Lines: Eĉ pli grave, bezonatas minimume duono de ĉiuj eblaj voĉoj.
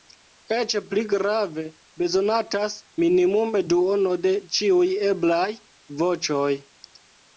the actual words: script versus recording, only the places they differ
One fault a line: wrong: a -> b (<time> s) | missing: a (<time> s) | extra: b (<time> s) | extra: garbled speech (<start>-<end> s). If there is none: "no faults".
no faults